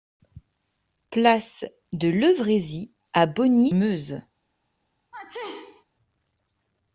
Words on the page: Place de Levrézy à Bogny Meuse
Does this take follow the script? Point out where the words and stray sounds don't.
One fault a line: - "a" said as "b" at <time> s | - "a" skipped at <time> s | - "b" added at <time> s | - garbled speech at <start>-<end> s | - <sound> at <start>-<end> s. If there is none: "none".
- sneeze at 5.1-5.8 s